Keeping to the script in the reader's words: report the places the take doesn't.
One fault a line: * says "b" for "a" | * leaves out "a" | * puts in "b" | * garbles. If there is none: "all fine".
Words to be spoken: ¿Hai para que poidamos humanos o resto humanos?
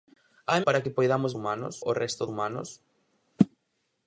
all fine